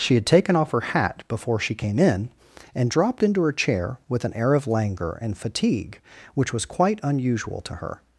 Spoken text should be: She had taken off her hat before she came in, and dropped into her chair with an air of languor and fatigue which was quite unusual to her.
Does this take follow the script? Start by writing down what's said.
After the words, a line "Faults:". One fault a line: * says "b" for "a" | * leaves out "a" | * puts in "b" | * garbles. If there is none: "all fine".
She had taken off her hat before she came in, and dropped into her chair with an air of languor and fatigue which was quite unusual to her.
Faults:
all fine